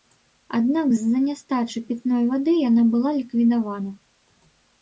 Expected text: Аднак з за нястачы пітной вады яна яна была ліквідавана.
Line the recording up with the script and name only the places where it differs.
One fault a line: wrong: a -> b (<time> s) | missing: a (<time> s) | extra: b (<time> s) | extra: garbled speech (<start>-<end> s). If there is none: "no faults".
missing: яна (2.8 s)